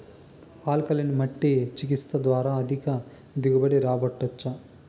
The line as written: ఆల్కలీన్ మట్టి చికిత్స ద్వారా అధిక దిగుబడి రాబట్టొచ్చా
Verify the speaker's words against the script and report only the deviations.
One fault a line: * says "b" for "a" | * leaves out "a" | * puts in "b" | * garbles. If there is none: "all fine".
all fine